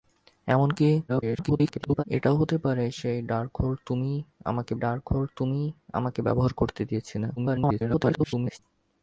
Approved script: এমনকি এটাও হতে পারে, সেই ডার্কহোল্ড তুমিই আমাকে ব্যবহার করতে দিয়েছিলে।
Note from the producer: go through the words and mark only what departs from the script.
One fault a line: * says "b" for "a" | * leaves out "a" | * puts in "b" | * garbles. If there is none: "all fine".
* garbles
* puts in "ডার্কহোল্ড তুমিই আমাকে"
* garbles